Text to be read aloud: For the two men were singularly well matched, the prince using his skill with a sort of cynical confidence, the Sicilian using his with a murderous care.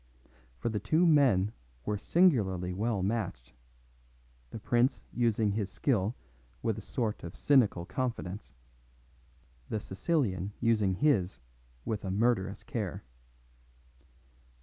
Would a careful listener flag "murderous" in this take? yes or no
no